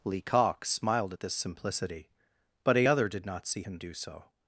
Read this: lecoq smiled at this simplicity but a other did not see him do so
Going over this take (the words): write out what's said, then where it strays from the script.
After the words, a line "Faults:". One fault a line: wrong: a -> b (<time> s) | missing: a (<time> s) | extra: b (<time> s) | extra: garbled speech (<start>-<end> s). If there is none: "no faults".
lecoq smiled at this simplicity but a other did not see him do so
Faults:
no faults